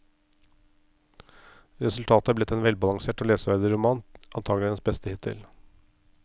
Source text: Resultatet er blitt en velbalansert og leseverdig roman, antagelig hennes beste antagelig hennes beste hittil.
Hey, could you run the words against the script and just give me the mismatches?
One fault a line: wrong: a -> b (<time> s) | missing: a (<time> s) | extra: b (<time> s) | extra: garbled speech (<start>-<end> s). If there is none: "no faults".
missing: antagelig hennes beste (5.1 s)